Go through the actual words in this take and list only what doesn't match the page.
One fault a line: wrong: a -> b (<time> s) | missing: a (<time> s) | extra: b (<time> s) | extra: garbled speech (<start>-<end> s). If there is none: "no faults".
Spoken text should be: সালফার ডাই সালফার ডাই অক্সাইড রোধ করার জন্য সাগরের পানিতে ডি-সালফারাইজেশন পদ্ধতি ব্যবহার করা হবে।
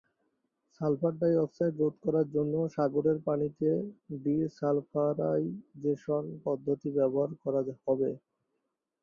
missing: সালফার ডাই (1.3 s)